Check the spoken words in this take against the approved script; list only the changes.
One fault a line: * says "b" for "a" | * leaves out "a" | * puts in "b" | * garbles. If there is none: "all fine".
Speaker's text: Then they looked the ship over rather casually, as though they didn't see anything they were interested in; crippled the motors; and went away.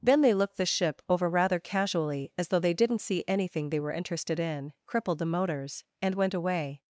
all fine